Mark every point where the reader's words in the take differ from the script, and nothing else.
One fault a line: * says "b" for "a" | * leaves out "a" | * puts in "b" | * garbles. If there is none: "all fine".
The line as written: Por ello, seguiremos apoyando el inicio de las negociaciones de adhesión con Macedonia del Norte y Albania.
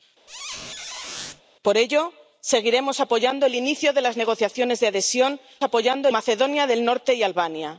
* says "apoyando" for "con"